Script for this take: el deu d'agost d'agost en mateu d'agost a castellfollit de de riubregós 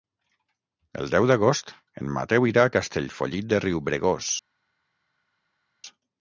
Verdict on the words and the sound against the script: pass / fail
fail